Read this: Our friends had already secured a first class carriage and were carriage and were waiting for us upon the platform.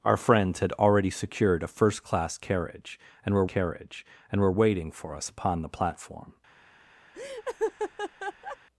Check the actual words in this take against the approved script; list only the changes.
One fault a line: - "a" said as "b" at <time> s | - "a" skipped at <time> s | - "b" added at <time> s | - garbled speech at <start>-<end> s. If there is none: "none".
none